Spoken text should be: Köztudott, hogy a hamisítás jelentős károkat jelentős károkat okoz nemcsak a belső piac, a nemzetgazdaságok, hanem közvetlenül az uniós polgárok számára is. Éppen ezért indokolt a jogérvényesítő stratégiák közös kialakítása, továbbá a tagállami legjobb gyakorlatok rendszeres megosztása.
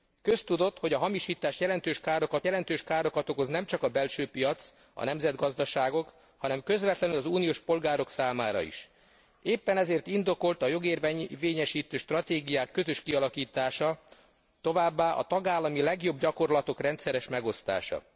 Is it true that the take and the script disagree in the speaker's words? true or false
false